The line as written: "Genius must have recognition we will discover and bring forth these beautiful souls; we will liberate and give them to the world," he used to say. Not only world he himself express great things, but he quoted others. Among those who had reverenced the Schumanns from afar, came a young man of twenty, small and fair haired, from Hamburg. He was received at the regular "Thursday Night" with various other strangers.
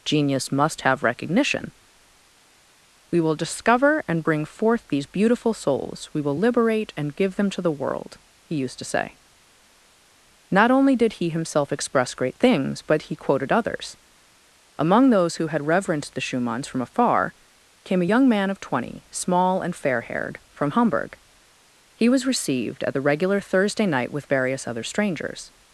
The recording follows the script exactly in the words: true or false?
false